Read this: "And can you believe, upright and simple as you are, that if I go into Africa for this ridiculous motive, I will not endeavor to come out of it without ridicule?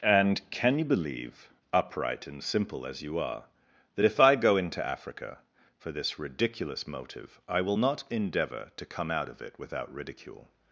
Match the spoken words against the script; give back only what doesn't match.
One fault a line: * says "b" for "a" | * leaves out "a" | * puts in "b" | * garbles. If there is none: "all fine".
all fine